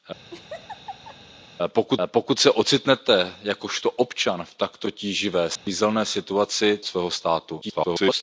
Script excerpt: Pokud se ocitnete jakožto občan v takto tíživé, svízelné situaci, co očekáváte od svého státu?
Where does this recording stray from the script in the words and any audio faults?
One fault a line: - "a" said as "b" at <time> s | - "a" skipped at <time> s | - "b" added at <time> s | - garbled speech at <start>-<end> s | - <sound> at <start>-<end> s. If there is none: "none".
- laugh at 0.3-1.2 s
- "pokud" added at 2.1 s
- dropout at 5.6-5.7 s
- "co očekáváte od" skipped at 6.8 s
- garbled speech at 7.6-8.2 s